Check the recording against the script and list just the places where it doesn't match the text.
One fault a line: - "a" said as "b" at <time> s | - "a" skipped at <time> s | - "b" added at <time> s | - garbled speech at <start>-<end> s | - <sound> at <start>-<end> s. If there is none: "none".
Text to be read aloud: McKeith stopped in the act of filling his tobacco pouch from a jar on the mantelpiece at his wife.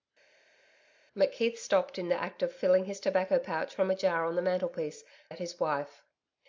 none